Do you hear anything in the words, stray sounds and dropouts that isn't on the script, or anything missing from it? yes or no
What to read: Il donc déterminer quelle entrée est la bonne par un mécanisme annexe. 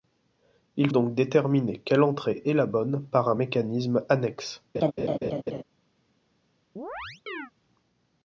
yes